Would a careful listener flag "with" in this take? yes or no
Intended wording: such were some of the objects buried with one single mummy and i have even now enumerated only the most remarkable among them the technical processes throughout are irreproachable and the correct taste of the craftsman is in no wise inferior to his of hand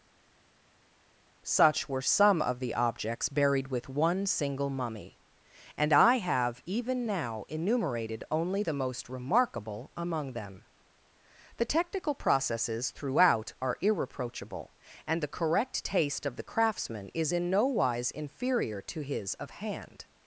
no